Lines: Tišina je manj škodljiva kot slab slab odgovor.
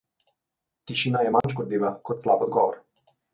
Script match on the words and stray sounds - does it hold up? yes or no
no